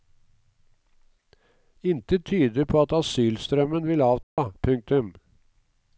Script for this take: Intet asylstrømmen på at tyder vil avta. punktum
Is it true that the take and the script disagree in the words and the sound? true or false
true